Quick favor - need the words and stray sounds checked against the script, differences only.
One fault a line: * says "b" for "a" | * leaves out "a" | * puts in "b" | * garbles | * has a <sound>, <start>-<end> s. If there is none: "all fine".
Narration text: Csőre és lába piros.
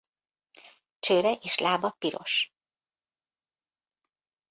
all fine